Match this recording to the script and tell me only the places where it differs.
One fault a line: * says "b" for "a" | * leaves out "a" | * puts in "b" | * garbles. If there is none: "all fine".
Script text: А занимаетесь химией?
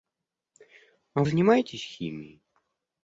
all fine